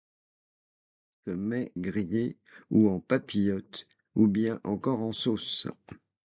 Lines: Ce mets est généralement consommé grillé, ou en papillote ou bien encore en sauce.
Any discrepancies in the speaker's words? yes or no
yes